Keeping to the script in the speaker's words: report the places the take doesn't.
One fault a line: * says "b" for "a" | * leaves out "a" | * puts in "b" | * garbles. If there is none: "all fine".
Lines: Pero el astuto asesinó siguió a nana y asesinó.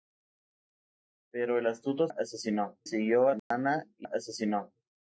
all fine